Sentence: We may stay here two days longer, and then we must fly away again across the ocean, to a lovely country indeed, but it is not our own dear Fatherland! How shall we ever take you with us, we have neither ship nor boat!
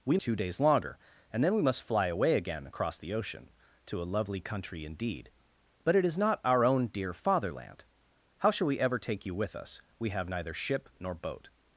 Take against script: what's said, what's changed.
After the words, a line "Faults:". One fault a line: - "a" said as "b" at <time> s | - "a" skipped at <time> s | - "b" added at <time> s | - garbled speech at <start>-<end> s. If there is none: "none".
We two days longer, and then we must fly away again across the ocean, to a lovely country indeed, but it is not our own dear Fatherland! How shall we ever take you with us, we have neither ship nor boat!
Faults:
- "may stay here" skipped at 0.2 s